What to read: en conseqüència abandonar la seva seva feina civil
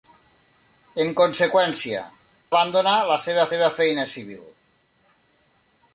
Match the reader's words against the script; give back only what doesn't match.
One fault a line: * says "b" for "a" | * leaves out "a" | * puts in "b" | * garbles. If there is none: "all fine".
all fine